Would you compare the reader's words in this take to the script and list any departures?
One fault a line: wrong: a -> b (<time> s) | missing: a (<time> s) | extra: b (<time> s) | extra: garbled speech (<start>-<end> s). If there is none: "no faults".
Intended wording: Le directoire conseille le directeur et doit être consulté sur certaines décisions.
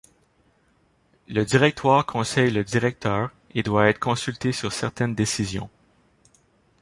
no faults